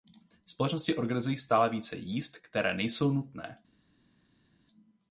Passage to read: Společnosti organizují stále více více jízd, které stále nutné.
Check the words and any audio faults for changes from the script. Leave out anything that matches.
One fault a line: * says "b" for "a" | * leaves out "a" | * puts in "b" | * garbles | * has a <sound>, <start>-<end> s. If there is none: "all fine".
* leaves out "více"
* says "nejsou" for "stále"